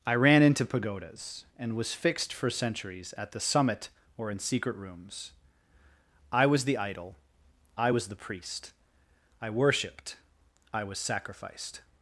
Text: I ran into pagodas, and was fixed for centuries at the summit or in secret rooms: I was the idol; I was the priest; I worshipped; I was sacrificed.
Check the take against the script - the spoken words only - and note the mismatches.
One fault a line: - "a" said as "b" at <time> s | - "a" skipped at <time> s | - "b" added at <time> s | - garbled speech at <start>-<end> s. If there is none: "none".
none